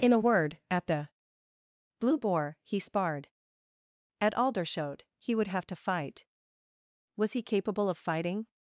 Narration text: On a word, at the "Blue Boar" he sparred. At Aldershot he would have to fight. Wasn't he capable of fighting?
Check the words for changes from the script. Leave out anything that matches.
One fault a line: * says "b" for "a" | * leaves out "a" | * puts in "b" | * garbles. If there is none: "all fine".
* says "In" for "On"
* says "Was" for "Wasn't"